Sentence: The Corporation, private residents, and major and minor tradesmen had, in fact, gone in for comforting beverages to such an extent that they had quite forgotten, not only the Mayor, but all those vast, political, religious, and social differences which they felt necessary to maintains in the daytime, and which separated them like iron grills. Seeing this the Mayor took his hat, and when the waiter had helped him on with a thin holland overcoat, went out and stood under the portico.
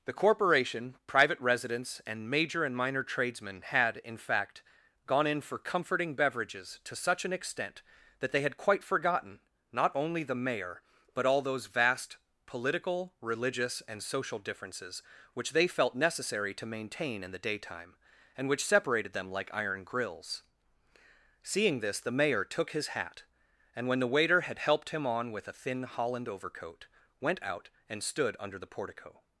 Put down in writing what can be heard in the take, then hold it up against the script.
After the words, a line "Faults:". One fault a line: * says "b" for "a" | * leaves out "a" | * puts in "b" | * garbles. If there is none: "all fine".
The Corporation, private residents, and major and minor tradesmen had, in fact, gone in for comforting beverages to such an extent that they had quite forgotten, not only the Mayor, but all those vast, political, religious, and social differences which they felt necessary to maintain in the daytime, and which separated them like iron grills. Seeing this the Mayor took his hat, and when the waiter had helped him on with a thin holland overcoat, went out and stood under the portico.
Faults:
* says "maintain" for "maintains"